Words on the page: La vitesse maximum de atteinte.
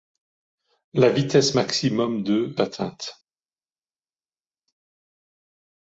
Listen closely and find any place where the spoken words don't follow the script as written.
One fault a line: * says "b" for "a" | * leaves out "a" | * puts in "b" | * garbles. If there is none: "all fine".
all fine